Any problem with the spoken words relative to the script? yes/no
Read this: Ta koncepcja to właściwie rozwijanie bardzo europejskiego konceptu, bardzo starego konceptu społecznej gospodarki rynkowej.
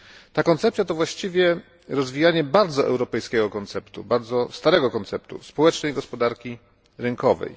no